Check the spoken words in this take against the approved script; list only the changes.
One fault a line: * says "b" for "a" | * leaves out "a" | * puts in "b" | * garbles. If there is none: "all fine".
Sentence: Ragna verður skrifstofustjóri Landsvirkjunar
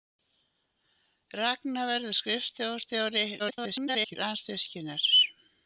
* garbles